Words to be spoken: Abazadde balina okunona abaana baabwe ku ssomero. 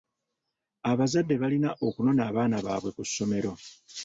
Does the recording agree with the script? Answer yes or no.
yes